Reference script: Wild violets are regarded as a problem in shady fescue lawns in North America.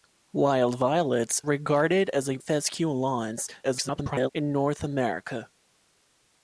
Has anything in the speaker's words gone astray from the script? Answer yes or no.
yes